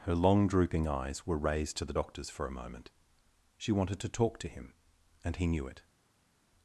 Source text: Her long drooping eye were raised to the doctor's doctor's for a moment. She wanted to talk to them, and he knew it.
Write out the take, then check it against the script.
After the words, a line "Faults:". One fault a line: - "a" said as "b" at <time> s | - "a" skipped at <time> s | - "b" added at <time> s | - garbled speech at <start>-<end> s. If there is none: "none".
Her long drooping eyes were raised to the doctor's for a moment. She wanted to talk to him, and he knew it.
Faults:
- "eye" said as "eyes" at 0.9 s
- "doctor's" skipped at 2.3 s
- "them" said as "him" at 4.5 s